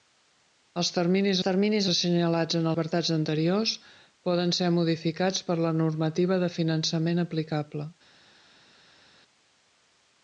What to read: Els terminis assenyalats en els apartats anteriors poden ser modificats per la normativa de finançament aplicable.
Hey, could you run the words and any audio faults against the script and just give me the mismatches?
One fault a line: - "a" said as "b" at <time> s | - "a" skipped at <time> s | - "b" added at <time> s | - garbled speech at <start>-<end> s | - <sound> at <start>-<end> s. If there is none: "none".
- "terminis" added at 1.4 s
- "els" skipped at 2.7 s